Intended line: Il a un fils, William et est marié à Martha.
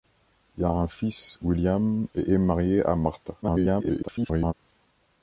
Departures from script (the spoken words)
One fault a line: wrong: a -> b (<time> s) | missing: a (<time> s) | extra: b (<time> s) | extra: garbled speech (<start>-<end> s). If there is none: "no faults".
extra: garbled speech (3.4-4.5 s)